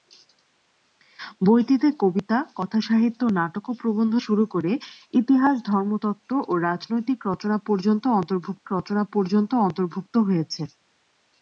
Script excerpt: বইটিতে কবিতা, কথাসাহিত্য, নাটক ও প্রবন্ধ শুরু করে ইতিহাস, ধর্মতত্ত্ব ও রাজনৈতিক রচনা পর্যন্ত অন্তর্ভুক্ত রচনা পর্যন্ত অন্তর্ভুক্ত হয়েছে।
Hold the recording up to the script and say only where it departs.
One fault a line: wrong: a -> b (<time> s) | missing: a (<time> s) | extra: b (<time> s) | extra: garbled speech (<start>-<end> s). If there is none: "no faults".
no faults